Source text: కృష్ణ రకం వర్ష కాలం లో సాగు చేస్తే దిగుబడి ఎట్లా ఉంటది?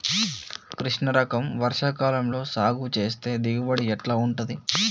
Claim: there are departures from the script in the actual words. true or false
false